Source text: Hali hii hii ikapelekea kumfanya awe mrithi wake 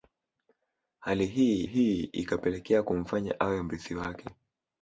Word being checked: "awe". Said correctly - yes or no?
yes